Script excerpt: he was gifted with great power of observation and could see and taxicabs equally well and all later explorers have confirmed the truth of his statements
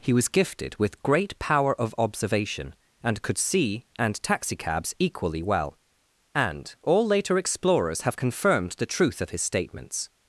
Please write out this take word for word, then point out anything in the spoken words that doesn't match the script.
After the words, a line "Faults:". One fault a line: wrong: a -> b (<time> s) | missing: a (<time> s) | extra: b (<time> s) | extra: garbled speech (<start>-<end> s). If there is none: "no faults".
he was gifted with great power of observation and could see and taxicabs equally well and all later explorers have confirmed the truth of his statements
Faults:
no faults